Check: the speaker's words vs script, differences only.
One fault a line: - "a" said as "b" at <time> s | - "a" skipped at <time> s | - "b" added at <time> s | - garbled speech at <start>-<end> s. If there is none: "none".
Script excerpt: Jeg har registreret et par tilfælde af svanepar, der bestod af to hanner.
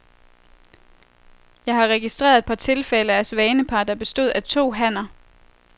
none